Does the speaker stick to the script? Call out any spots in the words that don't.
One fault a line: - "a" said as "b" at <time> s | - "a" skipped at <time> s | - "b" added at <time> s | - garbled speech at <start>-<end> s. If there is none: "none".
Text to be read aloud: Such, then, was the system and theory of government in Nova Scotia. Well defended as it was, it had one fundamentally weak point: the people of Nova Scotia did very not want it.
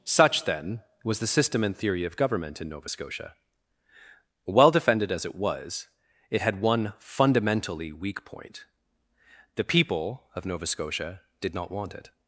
- "very" skipped at 11.5 s